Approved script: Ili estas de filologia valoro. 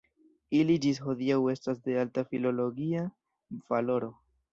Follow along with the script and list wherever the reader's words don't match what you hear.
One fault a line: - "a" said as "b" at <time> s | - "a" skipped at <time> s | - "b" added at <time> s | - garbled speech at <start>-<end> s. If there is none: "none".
- "ĝis hodiaŭ" added at 0.8 s
- "alta" added at 2.0 s